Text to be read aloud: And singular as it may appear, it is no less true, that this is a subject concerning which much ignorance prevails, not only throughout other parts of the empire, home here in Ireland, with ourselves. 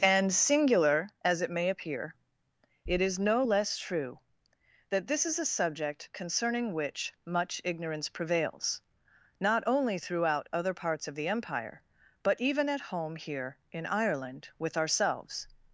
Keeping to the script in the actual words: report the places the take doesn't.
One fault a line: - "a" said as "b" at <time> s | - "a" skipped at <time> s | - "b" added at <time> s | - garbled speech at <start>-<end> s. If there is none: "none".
- "but even at" added at 12.2 s